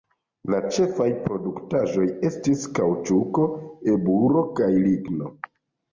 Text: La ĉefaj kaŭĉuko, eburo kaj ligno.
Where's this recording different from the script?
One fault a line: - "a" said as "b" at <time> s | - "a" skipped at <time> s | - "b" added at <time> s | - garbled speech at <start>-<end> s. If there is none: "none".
- "produktaĵoj estis" added at 1.2 s